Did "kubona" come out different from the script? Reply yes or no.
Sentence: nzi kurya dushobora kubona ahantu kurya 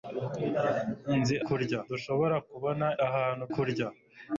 no